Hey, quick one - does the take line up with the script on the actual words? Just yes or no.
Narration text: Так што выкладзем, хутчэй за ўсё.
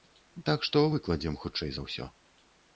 yes